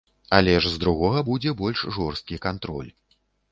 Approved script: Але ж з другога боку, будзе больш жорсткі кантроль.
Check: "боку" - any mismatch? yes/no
yes